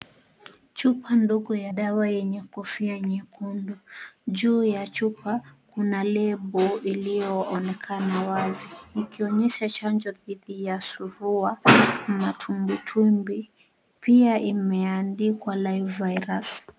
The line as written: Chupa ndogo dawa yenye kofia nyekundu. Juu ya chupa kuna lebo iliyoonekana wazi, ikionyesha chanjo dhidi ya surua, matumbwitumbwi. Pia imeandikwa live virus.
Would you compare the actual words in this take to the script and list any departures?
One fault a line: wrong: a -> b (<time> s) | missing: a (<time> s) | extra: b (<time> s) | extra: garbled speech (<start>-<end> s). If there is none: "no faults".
extra: ya (1.6 s)